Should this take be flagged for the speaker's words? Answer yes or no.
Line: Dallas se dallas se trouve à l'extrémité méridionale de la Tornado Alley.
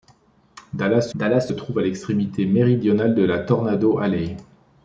no